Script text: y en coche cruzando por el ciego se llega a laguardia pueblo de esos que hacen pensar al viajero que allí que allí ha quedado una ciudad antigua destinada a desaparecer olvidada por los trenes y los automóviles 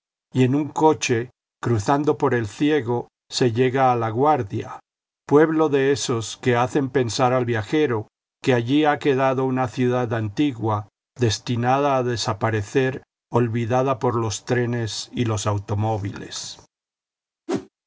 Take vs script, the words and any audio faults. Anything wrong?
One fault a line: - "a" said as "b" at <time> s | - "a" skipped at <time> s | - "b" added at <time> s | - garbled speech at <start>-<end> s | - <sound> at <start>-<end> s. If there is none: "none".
- "un" added at 0.6 s
- "que allí" skipped at 8.8 s
- whoosh at 17.5-17.7 s